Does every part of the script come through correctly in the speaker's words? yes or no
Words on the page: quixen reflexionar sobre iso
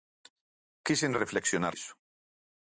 no